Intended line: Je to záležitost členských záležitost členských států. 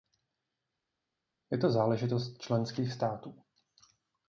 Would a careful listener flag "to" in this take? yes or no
no